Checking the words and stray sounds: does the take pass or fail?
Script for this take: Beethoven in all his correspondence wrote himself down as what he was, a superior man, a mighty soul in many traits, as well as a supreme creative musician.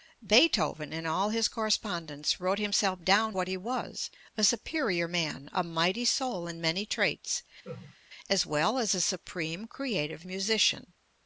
fail